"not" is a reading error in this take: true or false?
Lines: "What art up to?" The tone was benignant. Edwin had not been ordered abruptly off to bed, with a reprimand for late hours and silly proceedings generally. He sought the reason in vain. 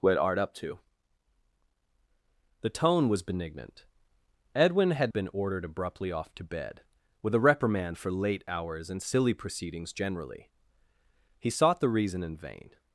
true